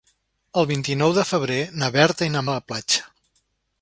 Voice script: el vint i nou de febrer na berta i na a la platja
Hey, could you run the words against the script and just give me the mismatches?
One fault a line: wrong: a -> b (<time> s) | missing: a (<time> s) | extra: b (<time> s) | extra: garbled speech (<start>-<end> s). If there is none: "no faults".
no faults